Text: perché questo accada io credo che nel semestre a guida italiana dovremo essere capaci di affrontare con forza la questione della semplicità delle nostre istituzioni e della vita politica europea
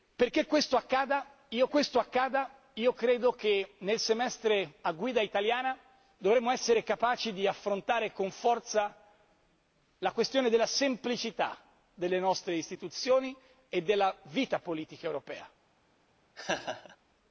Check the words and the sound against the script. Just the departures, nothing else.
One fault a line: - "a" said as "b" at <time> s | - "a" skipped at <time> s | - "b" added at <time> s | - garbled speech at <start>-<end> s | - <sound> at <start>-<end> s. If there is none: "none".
- "questo accada io" added at 1.7 s
- laugh at 16.4-17.0 s